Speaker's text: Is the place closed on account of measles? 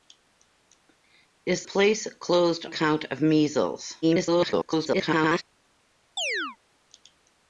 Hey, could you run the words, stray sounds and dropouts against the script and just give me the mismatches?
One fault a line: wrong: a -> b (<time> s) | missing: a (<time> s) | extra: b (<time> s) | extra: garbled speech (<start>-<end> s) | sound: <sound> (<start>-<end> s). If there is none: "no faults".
missing: the (1.6 s)
missing: on (2.7 s)
extra: garbled speech (4.0-5.4 s)
sound: chirp (6.2-6.6 s)